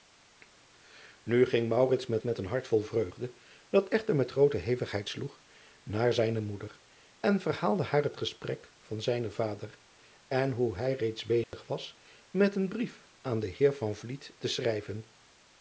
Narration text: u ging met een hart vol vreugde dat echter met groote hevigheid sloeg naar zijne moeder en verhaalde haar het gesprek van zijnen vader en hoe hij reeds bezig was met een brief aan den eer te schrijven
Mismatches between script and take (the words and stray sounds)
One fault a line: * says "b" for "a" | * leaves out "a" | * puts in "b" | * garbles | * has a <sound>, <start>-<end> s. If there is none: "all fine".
* puts in "met"
* has a dropout, 11.4-11.5 s